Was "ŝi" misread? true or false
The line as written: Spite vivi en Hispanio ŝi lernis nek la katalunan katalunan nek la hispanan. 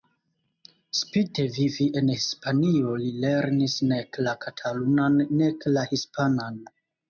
true